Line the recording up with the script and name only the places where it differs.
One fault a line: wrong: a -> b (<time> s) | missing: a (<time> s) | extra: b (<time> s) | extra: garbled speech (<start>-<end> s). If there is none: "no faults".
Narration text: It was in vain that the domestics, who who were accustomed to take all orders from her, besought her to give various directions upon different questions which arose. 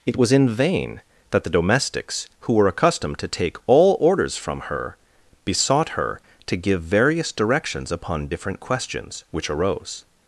missing: who (2.5 s)